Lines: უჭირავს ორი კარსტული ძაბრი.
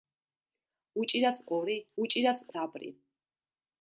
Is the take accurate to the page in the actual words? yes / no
no